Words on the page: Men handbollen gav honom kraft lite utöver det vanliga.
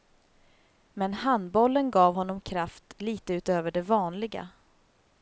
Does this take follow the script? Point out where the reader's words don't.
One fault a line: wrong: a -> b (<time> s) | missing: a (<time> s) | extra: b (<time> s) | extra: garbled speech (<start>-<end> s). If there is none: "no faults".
no faults